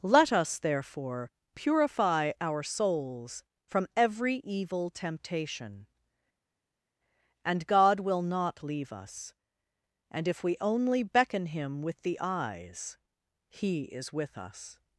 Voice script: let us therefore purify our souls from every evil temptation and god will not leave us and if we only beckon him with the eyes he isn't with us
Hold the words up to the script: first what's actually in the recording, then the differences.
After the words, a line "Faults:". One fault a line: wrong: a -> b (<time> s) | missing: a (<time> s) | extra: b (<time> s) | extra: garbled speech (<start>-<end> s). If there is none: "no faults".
let us therefore purify our souls from every evil temptation and god will not leave us and if we only beckon him with the eyes he is with us
Faults:
wrong: isn't -> is (13.8 s)